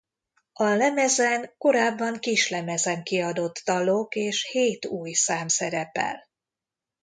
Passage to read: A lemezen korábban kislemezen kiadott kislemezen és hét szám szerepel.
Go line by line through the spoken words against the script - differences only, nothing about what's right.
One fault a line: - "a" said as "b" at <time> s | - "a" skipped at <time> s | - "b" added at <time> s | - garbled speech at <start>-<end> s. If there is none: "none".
- "kislemezen" said as "dalok" at 3.7 s
- "új" added at 4.9 s